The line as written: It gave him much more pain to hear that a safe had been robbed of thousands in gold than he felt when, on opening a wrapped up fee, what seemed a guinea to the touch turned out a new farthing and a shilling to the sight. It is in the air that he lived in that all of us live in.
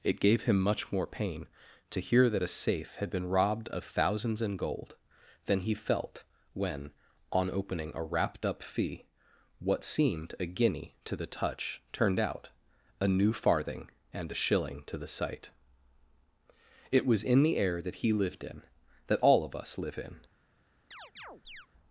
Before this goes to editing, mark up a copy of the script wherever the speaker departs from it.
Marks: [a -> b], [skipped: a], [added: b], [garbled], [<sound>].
It gave him much more pain to hear that a safe had been robbed of thousands in gold than he felt when, on opening a wrapped up fee, what seemed a guinea to the touch turned out a new farthing and a shilling to the sight. It [is -> was] in the air that he lived in that all of us live in. [chirp]